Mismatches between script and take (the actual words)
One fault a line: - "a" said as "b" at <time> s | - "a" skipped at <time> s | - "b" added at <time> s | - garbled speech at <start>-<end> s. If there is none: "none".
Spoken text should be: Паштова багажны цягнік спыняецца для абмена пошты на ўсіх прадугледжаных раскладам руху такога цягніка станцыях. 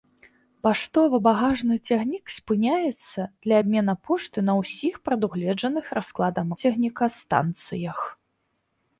- "руху такога" skipped at 6.5 s